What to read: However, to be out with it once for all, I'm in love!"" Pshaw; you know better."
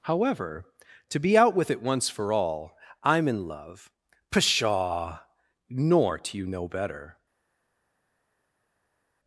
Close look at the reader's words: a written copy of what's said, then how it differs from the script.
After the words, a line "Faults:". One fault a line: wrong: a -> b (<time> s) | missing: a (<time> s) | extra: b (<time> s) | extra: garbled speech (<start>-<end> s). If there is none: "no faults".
However, to be out with it once for all, I'm in love!"" Pshaw; nor do you know better."
Faults:
extra: nor do (5.7 s)